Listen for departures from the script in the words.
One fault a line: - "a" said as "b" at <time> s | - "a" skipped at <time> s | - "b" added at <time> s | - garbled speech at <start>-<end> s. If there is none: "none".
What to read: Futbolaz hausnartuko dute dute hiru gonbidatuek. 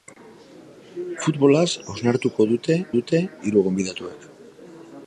none